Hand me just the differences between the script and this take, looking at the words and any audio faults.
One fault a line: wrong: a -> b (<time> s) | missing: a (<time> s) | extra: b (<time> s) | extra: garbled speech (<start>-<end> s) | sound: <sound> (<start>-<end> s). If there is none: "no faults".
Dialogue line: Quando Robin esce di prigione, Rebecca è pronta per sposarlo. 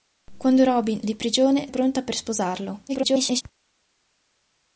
missing: esce (1.0 s)
missing: Rebecca (1.6 s)
extra: garbled speech (2.9-3.4 s)